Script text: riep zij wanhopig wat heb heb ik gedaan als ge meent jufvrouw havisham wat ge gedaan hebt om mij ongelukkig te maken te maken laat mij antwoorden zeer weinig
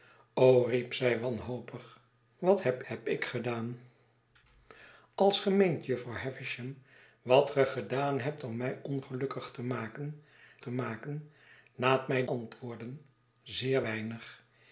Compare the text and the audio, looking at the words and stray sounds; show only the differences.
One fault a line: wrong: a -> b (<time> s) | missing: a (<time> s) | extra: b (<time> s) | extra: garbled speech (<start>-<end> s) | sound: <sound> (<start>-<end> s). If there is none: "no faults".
no faults